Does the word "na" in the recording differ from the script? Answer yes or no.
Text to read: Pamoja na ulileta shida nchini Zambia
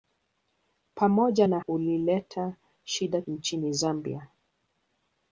no